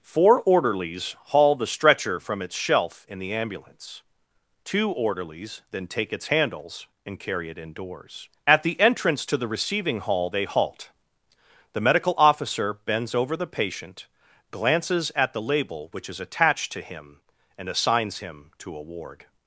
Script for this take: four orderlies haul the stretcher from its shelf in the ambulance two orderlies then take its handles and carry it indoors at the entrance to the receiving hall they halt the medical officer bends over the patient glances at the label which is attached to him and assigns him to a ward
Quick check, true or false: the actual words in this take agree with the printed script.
true